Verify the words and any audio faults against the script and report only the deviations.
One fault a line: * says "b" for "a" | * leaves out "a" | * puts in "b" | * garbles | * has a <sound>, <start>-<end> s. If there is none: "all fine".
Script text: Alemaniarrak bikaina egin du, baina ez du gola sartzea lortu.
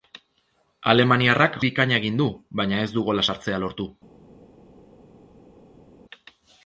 all fine